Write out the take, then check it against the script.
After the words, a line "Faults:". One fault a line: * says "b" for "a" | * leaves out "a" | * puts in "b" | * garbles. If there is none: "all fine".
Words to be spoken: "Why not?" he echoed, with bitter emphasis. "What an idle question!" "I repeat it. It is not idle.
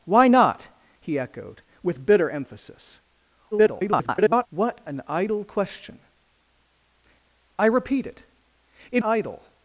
"Why not?" he echoed, with bitter emphasis. [garbled] "What an idle question!" "I repeat it. It idle.
Faults:
* garbles
* leaves out "is not"